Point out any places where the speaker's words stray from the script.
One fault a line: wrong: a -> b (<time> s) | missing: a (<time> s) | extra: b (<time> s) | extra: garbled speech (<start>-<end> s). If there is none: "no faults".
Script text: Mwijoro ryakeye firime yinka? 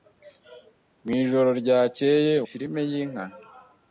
no faults